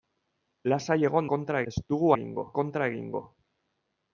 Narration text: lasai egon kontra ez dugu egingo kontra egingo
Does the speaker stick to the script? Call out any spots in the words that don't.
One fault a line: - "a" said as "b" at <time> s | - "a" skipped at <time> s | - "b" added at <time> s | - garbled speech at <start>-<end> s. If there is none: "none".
none